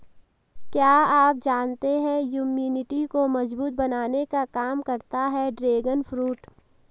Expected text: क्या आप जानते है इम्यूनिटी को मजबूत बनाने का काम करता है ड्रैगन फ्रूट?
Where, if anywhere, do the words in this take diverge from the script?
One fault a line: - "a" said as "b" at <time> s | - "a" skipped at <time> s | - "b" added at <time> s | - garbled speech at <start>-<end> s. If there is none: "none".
none